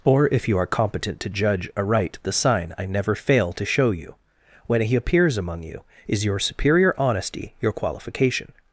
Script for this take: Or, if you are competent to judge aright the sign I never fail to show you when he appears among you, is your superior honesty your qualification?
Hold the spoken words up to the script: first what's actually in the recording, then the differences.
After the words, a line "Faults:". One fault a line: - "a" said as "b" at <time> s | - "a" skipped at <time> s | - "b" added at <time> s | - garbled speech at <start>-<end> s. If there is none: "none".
Or, if you are competent to judge aright the sign I never fail to show you when he appears among you, is your superior honesty your qualification?
Faults:
none